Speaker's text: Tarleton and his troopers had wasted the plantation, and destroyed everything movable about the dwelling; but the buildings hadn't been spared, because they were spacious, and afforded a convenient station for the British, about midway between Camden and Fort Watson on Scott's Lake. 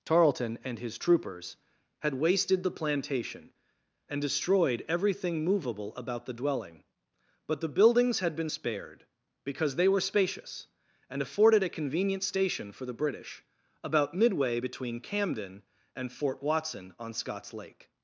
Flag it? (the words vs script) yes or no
yes